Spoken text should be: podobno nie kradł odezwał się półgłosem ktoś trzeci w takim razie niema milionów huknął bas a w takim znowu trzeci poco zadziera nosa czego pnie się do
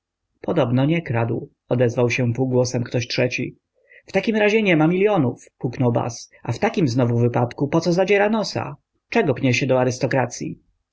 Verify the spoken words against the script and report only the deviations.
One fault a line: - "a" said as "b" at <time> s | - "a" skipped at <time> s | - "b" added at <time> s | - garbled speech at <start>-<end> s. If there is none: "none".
- "trzeci" said as "wypadku" at 7.2 s